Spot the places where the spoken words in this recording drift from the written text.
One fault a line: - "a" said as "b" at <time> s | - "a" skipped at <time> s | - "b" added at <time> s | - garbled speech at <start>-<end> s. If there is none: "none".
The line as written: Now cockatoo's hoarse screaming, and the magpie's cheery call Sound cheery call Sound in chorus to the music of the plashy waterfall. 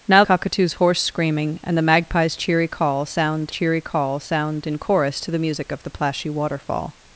none